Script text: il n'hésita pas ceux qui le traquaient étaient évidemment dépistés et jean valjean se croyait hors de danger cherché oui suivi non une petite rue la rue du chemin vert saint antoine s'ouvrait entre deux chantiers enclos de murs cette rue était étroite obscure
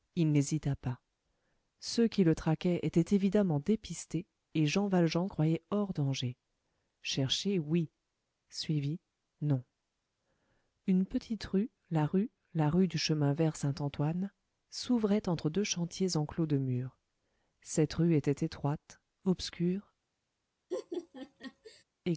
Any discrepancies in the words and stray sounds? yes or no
yes